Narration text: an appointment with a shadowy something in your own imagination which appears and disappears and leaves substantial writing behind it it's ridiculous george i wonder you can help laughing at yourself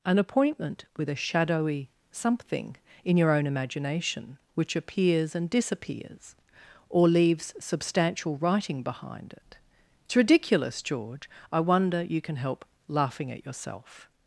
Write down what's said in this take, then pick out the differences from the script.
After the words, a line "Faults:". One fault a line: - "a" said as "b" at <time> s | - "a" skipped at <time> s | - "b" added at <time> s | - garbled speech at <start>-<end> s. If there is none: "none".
an appointment with a shadowy something in your own imagination which appears and disappears or leaves substantial writing behind it it's ridiculous george i wonder you can help laughing at yourself
Faults:
- "and" said as "or" at 6.9 s